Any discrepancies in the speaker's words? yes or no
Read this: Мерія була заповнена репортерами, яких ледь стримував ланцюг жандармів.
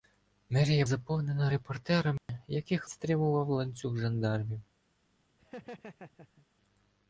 yes